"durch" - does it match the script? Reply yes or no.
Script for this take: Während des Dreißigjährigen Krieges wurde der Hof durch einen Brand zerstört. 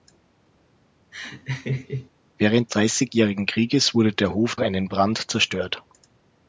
no